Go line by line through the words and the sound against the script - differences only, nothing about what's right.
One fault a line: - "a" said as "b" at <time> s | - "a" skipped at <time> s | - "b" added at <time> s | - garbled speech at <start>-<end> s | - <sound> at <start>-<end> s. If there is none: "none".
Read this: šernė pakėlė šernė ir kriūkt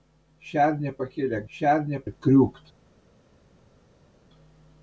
none